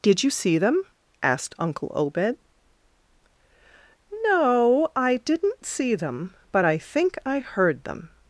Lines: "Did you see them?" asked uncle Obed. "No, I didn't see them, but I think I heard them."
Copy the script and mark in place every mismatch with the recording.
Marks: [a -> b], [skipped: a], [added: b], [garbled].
"Did you see them?" asked uncle Obed. "No, I didn't see them, but I think I heard them."